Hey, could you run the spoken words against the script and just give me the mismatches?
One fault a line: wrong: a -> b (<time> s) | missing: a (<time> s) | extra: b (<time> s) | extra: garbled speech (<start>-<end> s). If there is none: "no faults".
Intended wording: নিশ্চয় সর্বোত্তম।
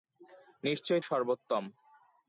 no faults